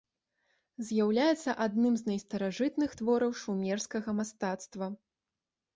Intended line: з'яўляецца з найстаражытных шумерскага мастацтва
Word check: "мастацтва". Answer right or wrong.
right